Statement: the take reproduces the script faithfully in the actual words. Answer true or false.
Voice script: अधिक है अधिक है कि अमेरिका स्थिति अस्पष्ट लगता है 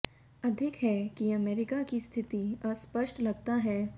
false